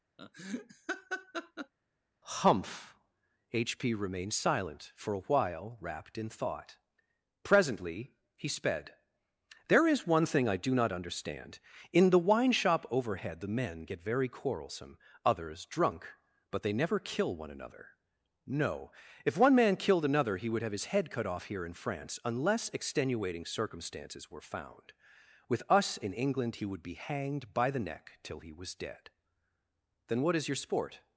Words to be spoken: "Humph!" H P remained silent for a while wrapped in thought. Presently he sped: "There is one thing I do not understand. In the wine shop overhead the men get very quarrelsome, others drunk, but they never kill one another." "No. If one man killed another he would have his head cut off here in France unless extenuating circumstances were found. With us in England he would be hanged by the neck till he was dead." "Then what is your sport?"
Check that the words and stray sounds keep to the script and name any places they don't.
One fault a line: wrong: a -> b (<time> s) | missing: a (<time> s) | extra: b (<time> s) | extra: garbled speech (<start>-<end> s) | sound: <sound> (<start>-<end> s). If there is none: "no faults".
sound: laugh (0.2-1.7 s)